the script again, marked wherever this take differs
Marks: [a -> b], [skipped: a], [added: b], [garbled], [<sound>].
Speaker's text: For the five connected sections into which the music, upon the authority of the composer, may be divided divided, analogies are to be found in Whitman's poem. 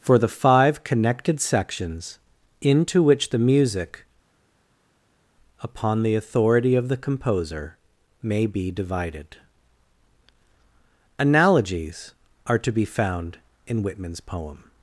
For the five connected sections into which the music, upon the authority of the composer, may be divided [skipped: divided,] analogies are to be found in Whitman's poem.